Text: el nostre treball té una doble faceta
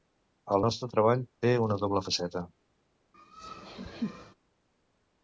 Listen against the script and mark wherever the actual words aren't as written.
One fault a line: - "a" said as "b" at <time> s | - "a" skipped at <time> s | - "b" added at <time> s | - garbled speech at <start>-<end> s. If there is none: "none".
none